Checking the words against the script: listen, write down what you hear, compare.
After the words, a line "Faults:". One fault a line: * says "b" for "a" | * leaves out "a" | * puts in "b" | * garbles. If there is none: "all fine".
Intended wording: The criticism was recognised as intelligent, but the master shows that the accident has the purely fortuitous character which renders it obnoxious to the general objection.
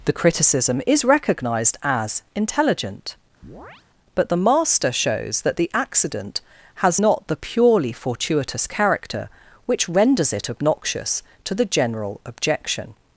The criticism is recognised as intelligent, but the master shows that the accident has not the purely fortuitous character which renders it obnoxious to the general objection.
Faults:
* says "is" for "was"
* puts in "not"